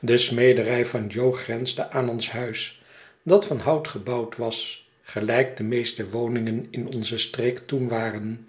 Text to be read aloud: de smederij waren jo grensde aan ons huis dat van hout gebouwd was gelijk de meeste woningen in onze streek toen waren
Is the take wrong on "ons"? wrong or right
right